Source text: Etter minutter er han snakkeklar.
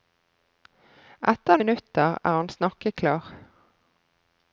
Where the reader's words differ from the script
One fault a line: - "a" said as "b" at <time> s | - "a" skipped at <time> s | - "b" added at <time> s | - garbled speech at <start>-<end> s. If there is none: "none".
none